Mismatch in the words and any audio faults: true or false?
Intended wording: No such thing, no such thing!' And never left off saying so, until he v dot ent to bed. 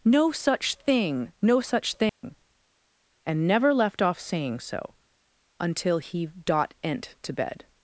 true